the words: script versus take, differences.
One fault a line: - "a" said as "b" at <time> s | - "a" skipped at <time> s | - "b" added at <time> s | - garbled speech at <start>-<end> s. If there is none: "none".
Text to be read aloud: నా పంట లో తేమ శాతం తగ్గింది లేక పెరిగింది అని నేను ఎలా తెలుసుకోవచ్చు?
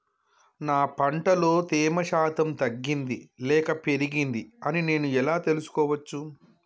none